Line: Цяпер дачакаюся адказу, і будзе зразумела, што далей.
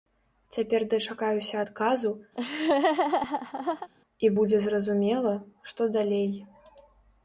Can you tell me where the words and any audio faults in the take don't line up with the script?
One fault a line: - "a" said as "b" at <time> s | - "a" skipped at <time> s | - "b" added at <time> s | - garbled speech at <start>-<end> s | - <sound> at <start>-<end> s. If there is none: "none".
- laugh at 2.3-3.9 s